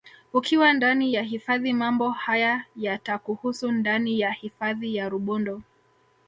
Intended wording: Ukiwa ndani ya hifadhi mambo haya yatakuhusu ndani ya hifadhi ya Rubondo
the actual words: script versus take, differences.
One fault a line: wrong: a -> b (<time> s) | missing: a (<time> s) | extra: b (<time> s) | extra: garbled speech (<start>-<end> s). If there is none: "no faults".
no faults